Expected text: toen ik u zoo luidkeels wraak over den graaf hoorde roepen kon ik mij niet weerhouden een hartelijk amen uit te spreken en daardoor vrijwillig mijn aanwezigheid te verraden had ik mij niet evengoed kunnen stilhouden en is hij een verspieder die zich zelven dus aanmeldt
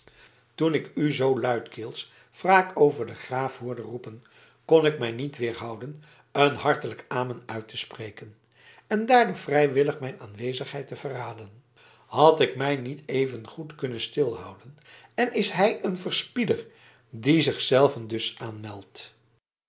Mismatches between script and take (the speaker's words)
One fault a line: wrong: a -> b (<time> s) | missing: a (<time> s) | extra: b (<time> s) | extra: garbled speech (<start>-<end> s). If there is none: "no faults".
no faults